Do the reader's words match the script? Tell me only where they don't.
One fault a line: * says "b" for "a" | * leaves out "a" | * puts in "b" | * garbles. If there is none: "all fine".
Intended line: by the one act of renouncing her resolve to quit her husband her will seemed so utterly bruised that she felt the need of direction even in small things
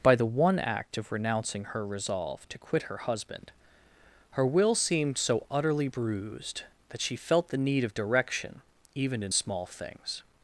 all fine